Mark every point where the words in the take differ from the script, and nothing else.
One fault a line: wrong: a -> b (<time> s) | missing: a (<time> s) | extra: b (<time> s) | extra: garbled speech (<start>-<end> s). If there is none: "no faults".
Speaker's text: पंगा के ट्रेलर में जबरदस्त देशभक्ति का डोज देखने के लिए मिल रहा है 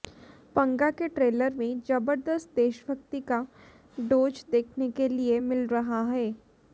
no faults